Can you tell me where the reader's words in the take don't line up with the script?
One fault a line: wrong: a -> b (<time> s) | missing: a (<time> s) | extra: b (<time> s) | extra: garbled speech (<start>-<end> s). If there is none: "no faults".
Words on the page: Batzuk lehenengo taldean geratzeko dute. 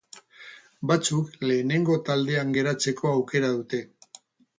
extra: aukera (3.1 s)